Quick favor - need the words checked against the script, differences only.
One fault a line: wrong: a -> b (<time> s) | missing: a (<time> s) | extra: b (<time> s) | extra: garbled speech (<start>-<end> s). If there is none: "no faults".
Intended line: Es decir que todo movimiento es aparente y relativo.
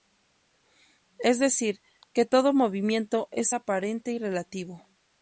no faults